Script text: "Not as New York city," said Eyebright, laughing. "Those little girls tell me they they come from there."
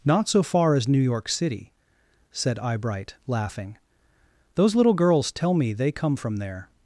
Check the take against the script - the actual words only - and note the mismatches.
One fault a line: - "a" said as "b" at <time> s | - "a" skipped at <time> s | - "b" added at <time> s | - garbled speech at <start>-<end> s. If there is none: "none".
- "so far" added at 0.3 s
- "they" skipped at 5.9 s